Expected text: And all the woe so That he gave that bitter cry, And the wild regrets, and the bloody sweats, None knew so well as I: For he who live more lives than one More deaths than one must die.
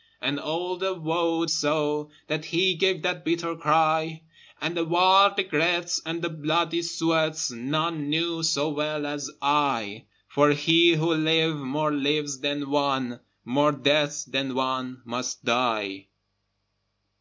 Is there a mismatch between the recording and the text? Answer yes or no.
no